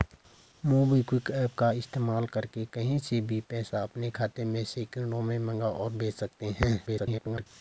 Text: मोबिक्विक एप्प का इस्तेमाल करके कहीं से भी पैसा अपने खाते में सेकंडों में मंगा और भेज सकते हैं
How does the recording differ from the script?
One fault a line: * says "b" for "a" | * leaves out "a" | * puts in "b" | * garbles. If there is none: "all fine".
* garbles